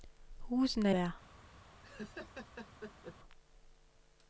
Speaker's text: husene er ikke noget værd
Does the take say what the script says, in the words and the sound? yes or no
no